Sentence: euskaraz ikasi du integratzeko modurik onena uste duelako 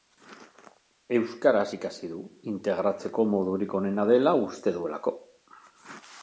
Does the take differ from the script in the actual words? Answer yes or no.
yes